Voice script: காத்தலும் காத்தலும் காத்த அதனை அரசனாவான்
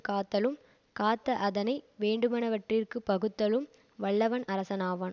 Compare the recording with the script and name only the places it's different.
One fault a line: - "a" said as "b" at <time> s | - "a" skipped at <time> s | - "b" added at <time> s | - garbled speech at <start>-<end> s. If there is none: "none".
- "காத்தலும்" skipped at 0.6 s
- "வேண்டுவனவற்றிற்குப் பகுத்தலும் வல்லவன்" added at 2.0 s